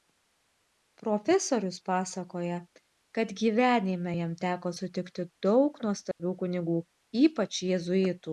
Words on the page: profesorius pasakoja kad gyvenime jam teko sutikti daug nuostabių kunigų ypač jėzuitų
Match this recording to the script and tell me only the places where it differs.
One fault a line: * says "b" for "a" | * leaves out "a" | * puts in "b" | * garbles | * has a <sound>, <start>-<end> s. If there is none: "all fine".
* has a dropout, 6.1-6.2 s